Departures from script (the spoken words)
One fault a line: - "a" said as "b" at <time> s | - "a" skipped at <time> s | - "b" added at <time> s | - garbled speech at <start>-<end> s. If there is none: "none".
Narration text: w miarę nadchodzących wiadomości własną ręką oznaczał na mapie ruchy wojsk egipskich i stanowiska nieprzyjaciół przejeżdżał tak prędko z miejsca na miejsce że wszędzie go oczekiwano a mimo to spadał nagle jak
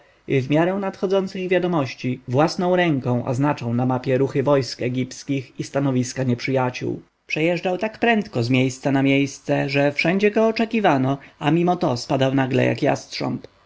none